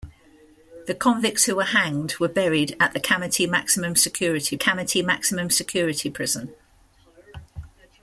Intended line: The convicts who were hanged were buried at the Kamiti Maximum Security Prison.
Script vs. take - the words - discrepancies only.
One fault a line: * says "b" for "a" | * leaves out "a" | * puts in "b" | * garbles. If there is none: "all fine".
* puts in "Kamiti Maximum Security"